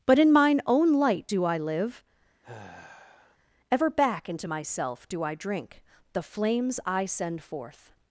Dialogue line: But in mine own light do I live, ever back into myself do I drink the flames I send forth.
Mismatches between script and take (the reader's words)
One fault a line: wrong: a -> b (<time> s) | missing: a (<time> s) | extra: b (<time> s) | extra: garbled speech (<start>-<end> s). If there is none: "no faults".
no faults